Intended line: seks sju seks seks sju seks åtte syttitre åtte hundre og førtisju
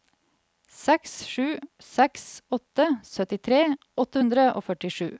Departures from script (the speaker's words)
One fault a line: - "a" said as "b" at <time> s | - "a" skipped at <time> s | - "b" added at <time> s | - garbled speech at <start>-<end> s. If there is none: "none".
- "seks sju seks" skipped at 2.2 s